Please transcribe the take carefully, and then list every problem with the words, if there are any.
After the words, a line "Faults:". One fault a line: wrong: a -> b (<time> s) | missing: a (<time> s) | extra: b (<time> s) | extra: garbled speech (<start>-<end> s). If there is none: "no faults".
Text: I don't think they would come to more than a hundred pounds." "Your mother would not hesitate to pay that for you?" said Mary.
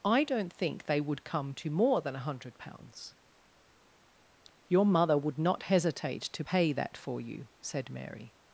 I don't think they would come to more than a hundred pounds." "Your mother would not hesitate to pay that for you?" said Mary.
Faults:
no faults